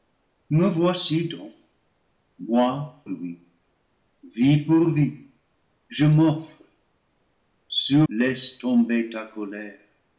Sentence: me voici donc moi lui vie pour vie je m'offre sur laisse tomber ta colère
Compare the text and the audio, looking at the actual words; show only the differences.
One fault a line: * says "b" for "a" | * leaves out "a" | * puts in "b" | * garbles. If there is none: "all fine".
all fine